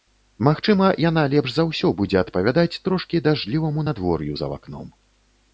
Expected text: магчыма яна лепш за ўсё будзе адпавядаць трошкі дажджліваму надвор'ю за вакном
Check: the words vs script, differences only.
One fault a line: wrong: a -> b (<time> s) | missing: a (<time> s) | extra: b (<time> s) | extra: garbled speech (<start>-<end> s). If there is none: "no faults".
no faults